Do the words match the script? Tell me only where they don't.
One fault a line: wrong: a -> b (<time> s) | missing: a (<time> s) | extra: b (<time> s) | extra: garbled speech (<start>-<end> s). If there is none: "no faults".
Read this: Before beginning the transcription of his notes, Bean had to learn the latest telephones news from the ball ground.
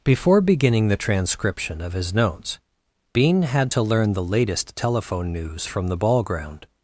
wrong: telephones -> telephone (4.8 s)